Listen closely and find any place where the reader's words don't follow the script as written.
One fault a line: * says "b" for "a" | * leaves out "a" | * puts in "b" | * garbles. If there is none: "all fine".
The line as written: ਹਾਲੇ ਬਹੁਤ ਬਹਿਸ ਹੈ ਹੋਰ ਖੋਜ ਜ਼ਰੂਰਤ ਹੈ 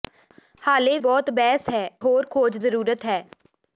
all fine